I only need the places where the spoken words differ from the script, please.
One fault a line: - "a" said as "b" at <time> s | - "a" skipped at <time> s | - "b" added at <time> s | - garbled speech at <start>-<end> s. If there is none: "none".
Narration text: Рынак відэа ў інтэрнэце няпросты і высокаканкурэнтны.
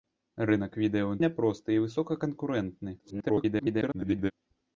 - "інтэрнэце" skipped at 1.2 s
- garbled speech at 3.0-4.3 s